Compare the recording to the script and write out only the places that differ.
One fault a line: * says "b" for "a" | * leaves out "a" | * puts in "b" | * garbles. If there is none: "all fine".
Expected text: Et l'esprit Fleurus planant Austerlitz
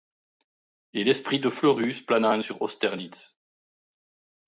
* puts in "de"
* puts in "sur"